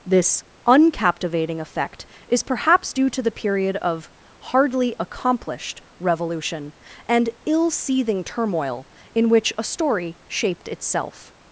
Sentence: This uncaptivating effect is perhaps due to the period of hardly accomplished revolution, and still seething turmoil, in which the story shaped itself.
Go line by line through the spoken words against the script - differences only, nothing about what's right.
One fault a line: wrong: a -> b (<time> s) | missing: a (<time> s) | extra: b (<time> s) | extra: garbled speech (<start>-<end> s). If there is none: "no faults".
wrong: still -> ill (7.4 s)
wrong: the -> a (9.6 s)